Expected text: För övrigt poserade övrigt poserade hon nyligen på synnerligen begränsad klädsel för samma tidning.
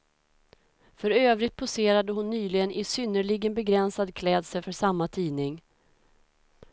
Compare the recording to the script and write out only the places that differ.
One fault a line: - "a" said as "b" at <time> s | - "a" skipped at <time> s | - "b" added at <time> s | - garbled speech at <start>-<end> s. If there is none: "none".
- "övrigt poserade" skipped at 2.1 s
- "på" said as "i" at 2.7 s